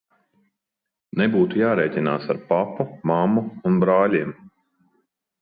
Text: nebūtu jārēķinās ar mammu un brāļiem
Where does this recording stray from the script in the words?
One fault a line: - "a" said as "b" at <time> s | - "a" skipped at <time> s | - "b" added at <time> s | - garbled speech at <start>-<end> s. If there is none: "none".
- "papu" added at 2.5 s